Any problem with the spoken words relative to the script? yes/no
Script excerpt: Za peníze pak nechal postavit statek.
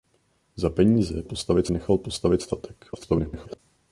yes